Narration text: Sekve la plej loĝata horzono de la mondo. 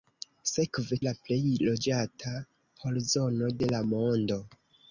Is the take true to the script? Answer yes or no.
yes